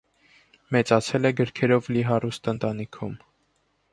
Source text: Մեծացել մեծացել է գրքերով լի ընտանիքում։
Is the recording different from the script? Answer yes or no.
yes